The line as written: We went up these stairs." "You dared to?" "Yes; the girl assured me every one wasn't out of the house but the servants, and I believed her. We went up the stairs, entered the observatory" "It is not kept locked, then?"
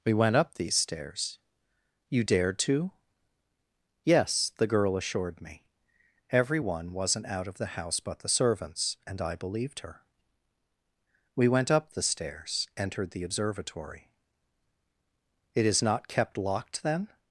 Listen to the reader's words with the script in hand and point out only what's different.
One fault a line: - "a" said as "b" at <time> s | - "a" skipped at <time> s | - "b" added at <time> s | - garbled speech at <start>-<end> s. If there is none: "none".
none